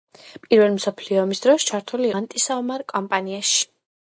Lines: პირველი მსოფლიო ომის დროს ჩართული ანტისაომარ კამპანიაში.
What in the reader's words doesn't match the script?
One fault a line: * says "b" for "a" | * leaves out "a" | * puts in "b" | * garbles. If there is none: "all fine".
all fine